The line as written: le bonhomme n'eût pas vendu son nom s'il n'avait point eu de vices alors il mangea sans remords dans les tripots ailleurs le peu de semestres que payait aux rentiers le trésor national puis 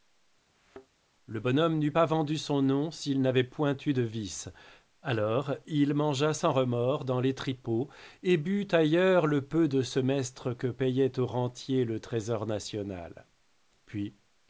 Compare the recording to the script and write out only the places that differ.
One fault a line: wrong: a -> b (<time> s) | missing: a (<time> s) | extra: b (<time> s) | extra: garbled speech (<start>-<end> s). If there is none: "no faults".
extra: et but (8.2 s)